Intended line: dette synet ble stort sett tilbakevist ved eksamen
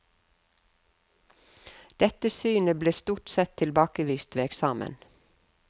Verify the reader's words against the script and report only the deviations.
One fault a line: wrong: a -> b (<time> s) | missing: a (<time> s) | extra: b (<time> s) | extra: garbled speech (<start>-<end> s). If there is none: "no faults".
no faults